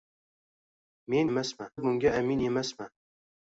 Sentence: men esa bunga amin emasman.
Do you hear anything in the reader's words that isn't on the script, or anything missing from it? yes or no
yes